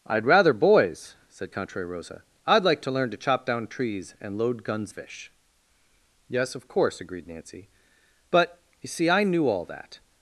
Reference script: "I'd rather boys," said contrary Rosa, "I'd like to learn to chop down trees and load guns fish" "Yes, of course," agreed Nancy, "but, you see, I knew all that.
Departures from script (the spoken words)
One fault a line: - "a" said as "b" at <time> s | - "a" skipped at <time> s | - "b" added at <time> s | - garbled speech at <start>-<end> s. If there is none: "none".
none